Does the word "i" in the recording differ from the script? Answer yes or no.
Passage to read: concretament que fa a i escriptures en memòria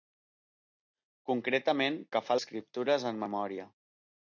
no